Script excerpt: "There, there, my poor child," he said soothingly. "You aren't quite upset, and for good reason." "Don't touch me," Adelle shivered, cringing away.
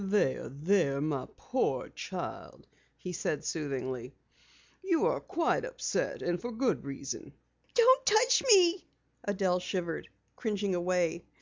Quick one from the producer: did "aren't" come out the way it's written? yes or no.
no